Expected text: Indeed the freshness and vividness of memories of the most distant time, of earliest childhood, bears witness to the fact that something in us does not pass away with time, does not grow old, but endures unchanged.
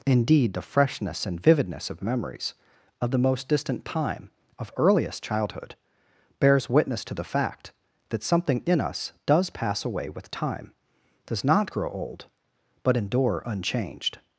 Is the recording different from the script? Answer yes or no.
yes